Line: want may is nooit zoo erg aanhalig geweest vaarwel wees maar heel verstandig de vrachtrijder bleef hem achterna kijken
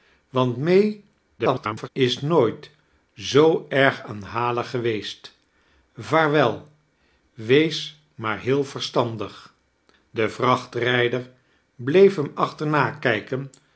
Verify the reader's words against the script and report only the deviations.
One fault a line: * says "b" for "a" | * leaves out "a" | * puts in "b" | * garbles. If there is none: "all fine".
* garbles